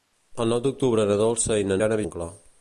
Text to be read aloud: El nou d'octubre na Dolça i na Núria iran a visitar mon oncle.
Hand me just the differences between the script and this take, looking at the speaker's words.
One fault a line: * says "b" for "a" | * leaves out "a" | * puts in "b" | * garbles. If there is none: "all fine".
* leaves out "Núria"
* leaves out "visitar mon"